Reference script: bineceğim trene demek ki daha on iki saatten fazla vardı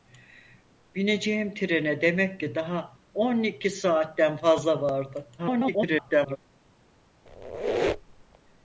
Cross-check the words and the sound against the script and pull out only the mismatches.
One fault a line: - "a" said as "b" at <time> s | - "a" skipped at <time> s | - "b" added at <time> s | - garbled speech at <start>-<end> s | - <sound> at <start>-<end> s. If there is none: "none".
- garbled speech at 5.4-6.4 s
- squeak at 7.3-8.4 s